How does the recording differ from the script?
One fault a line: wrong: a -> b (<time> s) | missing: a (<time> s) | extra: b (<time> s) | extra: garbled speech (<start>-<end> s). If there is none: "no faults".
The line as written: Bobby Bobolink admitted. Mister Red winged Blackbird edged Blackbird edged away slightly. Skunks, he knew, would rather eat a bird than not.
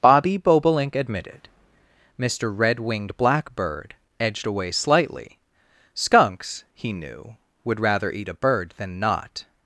missing: Blackbird edged (4.5 s)